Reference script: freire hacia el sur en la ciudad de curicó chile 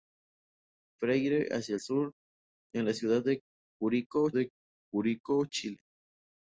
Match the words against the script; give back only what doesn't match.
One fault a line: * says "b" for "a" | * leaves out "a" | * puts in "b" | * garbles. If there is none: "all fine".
* puts in "de curicó"